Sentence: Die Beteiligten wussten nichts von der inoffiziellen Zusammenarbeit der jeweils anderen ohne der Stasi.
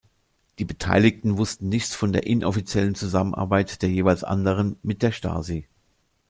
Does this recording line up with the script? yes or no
no